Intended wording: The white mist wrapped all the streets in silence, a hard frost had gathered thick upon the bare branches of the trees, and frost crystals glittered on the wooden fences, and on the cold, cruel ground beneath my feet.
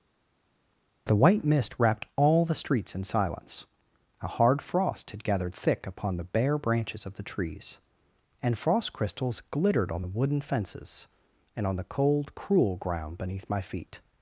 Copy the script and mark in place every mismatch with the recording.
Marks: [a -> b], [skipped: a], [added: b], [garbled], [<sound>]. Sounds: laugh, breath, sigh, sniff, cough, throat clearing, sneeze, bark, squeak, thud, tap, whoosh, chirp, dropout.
The white mist wrapped all the streets in silence, a hard frost had gathered thick upon the bare branches of the trees, and frost crystals glittered on the wooden fences, and on the cold, cruel ground beneath my feet.